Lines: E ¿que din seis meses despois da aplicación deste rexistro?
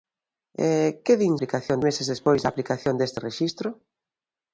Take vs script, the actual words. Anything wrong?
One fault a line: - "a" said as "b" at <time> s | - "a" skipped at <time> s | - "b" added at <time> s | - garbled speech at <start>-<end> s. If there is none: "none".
- "seis" said as "aplicación" at 1.4 s